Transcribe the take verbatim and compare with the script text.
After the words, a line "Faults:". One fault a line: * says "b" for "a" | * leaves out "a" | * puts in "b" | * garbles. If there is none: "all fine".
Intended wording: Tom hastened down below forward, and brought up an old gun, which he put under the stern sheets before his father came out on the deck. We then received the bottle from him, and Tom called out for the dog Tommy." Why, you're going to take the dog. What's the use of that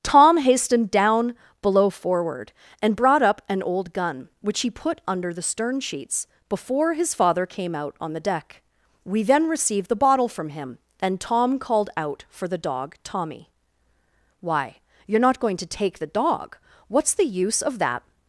Tom hastened down below forward, and brought up an old gun, which he put under the stern sheets before his father came out on the deck. We then received the bottle from him, and Tom called out for the dog Tommy." Why, you're not going to take the dog. What's the use of that
Faults:
* puts in "not"